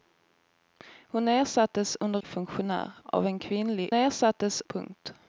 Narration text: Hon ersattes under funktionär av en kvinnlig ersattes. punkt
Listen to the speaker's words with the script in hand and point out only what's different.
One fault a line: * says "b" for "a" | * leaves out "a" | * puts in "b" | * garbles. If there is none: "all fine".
all fine